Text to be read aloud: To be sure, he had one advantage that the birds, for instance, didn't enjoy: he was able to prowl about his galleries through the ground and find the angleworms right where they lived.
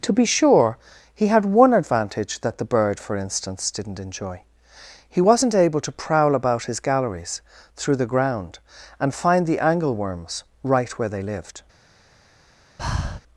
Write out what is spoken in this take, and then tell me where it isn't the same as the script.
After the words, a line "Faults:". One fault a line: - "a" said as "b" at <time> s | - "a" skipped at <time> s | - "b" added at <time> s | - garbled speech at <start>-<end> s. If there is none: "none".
To be sure, he had one advantage that the bird, for instance, didn't enjoy: he wasn't able to prowl about his galleries through the ground and find the angleworms right where they lived.
Faults:
- "birds" said as "bird" at 2.6 s
- "was" said as "wasn't" at 5.2 s